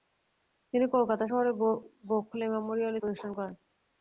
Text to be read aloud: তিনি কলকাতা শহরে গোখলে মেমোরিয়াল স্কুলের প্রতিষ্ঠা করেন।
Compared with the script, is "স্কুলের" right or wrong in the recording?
wrong